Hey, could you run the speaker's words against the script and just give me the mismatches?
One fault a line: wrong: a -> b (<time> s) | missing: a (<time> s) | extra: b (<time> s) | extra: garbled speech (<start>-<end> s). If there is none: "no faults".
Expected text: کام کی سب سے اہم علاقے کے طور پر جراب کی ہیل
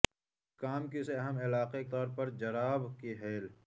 missing: سب (1.0 s)
missing: کے (1.8 s)